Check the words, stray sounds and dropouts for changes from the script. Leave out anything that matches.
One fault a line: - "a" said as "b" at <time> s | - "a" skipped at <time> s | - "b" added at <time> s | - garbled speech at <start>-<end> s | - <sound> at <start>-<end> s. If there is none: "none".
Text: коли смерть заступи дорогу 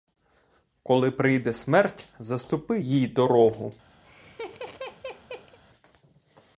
- "прийде" added at 1.1 s
- "їй" added at 2.8 s
- laugh at 4.0-5.6 s